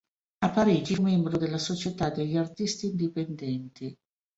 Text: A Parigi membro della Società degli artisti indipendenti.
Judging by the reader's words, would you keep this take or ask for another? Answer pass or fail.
pass